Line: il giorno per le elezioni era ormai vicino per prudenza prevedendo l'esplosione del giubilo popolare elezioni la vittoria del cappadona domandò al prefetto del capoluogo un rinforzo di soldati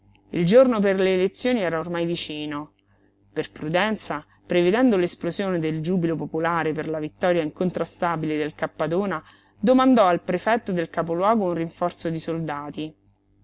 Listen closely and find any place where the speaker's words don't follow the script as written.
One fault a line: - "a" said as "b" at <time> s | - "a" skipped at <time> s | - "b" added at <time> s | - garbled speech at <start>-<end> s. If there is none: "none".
- "elezioni" said as "per" at 6.7 s
- "incontrastabile" added at 7.4 s